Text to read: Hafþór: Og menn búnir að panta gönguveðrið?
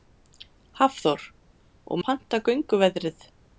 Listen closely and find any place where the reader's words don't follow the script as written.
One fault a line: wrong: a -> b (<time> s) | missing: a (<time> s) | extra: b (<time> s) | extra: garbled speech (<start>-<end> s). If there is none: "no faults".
missing: menn búnir (2.0 s)